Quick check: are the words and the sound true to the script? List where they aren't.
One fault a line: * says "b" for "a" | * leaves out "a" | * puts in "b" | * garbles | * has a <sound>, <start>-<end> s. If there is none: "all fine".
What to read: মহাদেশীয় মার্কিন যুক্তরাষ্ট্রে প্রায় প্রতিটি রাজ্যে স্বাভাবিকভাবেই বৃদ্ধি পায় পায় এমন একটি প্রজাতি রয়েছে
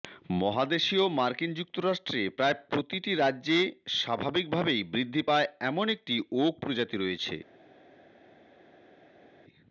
* leaves out "পায়"
* puts in "ওক"